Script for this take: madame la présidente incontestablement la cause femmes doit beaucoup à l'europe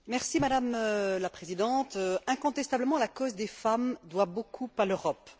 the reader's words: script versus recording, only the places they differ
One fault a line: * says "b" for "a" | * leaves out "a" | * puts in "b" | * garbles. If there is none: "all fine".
* puts in "des"